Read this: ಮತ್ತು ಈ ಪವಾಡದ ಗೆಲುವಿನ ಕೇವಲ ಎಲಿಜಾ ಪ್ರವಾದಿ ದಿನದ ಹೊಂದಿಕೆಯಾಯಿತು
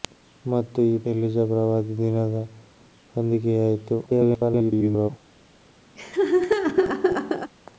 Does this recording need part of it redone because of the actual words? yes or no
yes